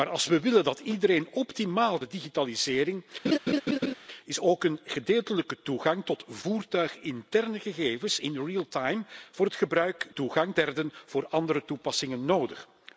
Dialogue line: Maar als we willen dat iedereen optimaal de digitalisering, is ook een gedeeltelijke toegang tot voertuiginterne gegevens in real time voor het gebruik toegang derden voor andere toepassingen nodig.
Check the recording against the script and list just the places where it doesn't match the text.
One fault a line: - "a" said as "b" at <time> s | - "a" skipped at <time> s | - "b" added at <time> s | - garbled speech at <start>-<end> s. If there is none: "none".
none